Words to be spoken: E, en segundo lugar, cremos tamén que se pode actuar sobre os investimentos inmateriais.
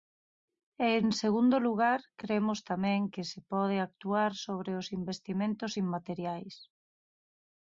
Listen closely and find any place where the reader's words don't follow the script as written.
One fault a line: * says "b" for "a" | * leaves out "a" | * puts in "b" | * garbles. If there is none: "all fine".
all fine